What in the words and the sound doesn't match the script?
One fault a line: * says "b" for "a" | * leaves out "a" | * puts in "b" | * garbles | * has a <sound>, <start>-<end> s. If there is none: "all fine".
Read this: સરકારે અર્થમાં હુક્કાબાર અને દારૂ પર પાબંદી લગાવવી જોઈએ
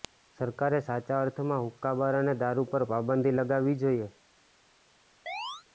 * puts in "સાચા"
* has a chirp, 5.3-5.6 s